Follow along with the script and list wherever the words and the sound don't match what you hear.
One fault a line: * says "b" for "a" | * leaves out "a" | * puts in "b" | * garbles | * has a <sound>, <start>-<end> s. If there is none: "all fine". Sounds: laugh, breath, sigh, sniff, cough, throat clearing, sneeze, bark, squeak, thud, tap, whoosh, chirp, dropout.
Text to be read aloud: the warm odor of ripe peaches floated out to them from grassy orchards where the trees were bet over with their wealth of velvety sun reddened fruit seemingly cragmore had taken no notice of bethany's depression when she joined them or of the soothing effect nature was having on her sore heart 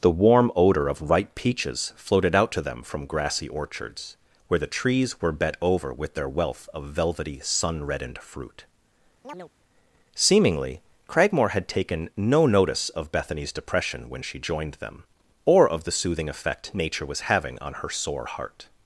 * has a chirp, 9.2-9.5 s